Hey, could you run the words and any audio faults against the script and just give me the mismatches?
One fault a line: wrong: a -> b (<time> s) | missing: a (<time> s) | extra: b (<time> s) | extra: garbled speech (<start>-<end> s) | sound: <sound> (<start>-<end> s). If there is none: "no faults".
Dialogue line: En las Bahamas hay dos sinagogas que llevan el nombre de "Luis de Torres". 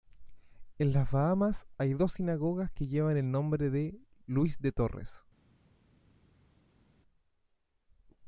no faults